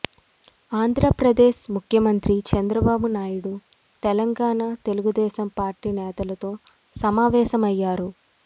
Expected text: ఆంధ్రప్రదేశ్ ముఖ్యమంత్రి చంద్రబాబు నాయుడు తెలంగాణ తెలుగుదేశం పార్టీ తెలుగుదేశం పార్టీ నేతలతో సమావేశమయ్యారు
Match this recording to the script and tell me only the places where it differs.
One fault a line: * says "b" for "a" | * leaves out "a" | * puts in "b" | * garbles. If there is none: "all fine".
* leaves out "తెలుగుదేశం పార్టీ"